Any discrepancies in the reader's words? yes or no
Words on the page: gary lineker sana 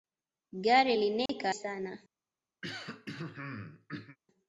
no